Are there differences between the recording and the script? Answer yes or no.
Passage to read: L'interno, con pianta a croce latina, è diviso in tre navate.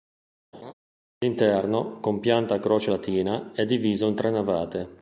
no